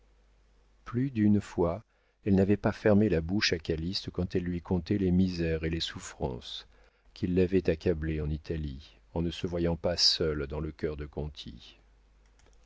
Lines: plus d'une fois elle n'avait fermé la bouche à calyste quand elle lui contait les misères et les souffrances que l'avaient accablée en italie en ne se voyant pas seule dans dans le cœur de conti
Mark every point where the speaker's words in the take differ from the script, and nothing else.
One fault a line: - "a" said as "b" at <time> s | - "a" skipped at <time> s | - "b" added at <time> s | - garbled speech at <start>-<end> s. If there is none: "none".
- "pas" added at 2.6 s
- "que" said as "qui" at 7.1 s
- "dans" skipped at 10.6 s